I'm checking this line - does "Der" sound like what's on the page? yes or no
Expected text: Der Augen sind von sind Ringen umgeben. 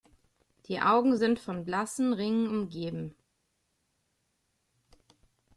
no